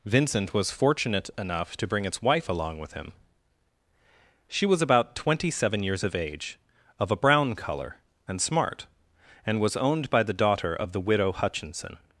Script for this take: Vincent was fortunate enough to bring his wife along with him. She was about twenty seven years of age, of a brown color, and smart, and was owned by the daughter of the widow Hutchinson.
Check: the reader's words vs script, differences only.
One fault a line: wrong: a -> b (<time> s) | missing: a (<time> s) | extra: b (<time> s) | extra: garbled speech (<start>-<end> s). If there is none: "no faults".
wrong: his -> its (2.0 s)